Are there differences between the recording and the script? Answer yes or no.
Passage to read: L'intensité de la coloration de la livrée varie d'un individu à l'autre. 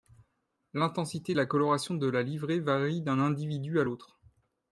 no